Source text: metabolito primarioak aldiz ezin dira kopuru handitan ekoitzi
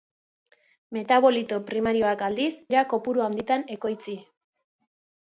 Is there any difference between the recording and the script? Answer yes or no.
yes